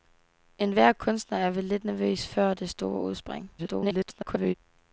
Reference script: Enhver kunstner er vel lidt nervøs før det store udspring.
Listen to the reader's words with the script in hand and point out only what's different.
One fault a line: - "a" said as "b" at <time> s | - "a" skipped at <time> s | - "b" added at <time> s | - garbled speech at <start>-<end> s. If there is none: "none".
- garbled speech at 3.6-4.5 s